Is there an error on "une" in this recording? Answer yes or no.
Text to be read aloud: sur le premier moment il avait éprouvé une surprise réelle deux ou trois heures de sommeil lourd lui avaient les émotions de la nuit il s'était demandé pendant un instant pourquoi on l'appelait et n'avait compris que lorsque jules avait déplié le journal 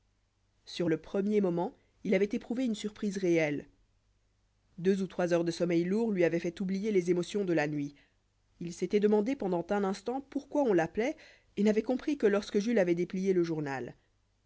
no